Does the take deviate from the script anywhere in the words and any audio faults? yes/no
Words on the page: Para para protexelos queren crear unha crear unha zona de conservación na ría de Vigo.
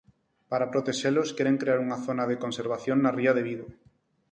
yes